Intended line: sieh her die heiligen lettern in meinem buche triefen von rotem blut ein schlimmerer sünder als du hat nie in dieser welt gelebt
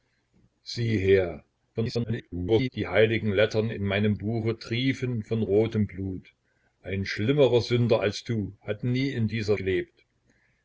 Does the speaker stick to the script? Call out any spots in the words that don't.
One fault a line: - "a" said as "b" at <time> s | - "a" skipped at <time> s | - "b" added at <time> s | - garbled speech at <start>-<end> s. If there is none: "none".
- garbled speech at 1.7-2.7 s
- "welt" skipped at 9.6 s